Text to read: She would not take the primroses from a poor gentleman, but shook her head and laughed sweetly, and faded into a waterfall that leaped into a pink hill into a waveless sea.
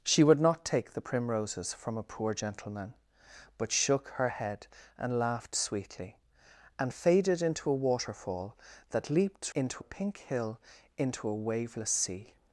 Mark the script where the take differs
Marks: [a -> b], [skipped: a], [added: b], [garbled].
She would not take the primroses from a poor gentleman, but shook her head and laughed sweetly, and faded into a waterfall that leaped into a pink hill into a waveless sea.